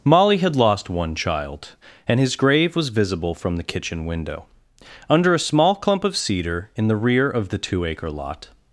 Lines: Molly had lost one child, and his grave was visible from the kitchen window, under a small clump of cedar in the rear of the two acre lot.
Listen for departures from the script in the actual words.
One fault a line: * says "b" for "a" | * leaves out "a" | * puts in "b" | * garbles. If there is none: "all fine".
all fine